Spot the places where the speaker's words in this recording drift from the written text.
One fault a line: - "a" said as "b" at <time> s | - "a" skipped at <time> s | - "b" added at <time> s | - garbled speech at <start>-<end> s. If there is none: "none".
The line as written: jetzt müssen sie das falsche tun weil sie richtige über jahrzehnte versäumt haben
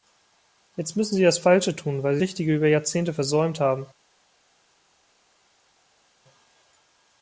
none